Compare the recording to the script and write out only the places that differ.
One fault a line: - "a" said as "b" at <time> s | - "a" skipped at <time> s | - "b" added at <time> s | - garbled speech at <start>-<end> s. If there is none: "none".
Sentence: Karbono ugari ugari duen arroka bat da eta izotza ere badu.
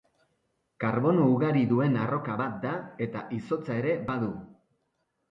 - "ugari" skipped at 1.6 s